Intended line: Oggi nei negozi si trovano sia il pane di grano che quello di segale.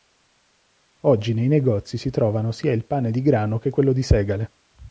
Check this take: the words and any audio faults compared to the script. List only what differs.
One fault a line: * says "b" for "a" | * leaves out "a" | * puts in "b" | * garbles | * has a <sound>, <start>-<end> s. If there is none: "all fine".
all fine